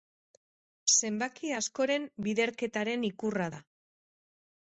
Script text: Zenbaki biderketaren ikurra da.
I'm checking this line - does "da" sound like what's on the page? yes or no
yes